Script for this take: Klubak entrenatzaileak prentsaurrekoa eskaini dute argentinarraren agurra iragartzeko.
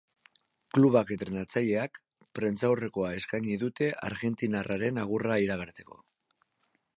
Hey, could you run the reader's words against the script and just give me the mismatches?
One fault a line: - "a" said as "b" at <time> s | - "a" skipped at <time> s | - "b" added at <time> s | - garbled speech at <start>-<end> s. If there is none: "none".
none